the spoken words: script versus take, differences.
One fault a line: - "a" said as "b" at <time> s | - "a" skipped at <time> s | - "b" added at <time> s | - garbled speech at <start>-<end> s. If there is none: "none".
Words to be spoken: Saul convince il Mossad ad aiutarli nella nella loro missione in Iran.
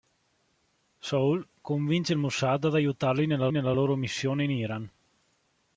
none